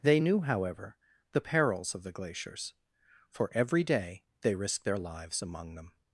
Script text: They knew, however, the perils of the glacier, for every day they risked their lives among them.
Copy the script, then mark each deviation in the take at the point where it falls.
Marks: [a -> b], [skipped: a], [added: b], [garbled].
They knew, however, the perils of the [glacier, -> glaciers] for every day they risked their lives among them.